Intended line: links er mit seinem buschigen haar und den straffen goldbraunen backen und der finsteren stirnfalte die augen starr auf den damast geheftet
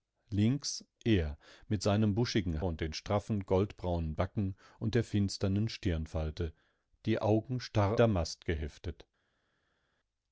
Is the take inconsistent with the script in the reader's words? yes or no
yes